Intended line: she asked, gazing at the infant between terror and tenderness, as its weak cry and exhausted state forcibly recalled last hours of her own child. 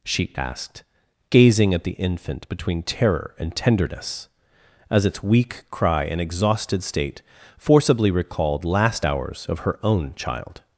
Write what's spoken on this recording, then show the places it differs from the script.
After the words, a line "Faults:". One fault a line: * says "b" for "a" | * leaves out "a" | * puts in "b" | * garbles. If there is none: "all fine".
she asked, gazing at the infant between terror and tenderness, as its weak cry and exhausted state forcibly recalled last hours of her own child.
Faults:
all fine